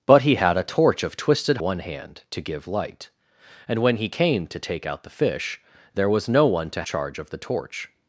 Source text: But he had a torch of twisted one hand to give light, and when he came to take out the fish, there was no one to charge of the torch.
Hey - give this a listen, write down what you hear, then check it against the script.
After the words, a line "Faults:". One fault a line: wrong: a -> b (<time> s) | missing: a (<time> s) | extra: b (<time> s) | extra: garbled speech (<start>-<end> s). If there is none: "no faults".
But he had a torch of twisted one hand to give light, and when he came to take out the fish, there was no one to charge of the torch.
Faults:
no faults